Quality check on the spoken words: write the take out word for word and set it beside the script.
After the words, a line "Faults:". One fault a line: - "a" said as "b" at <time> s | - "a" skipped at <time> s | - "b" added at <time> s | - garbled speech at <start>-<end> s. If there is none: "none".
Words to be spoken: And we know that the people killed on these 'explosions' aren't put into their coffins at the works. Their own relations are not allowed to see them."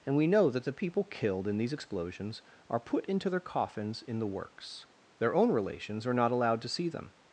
And we know that the people killed in these 'explosions' are put into their coffins in the works. Their own relations are not allowed to see them."
Faults:
- "on" said as "in" at 1.5 s
- "aren't" said as "are" at 2.7 s
- "at" said as "in" at 4.0 s